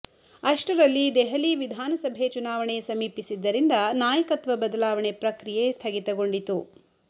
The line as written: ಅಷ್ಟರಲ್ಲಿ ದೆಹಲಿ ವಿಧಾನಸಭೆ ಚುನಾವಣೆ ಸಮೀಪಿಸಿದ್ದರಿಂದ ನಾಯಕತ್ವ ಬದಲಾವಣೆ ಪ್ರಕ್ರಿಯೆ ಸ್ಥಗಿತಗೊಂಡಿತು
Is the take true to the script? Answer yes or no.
yes